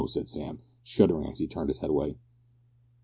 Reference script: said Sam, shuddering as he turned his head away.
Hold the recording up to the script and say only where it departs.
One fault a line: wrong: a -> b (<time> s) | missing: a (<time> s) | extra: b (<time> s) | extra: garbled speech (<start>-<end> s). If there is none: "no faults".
no faults